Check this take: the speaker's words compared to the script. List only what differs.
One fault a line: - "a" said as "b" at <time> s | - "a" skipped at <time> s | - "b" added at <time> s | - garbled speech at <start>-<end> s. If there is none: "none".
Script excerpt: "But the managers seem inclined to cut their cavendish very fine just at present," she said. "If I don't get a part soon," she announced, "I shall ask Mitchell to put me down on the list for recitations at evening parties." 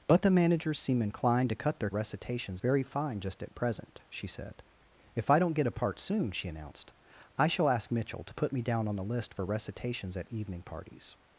- "cavendish" said as "recitations" at 1.9 s